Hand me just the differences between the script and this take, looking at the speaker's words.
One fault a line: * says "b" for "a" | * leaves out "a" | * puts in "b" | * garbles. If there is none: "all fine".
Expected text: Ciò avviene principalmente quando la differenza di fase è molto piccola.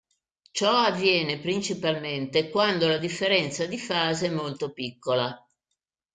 all fine